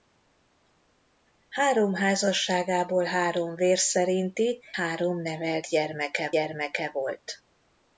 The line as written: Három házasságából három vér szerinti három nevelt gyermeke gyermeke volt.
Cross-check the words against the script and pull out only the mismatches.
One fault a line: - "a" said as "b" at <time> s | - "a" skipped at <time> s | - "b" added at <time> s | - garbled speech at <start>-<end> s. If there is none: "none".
none